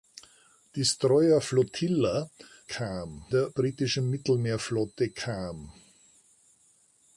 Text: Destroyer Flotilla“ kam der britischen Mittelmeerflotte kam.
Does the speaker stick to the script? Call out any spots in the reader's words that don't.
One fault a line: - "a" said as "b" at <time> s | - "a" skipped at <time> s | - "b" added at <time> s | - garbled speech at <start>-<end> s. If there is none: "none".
none